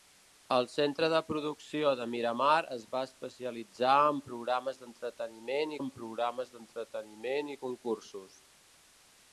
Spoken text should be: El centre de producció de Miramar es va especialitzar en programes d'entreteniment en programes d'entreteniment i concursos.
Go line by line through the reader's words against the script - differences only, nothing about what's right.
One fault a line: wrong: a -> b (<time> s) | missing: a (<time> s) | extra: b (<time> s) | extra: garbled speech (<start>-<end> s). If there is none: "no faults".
no faults